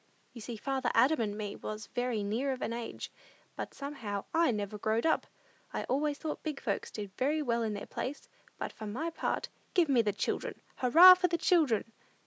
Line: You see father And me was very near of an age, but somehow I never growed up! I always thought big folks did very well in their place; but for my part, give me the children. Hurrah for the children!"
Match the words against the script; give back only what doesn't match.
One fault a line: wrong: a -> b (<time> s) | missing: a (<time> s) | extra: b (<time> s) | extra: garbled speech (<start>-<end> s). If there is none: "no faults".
extra: Adam (0.9 s)